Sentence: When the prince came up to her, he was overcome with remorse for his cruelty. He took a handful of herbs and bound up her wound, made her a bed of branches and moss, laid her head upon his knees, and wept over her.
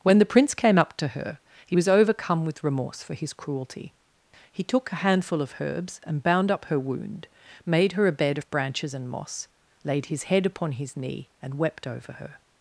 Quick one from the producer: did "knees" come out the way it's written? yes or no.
no